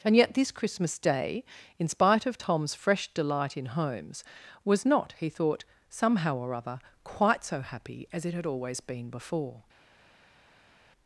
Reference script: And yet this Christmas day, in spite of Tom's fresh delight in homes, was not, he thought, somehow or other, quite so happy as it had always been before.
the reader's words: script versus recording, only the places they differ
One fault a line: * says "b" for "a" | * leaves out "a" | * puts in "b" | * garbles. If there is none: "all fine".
all fine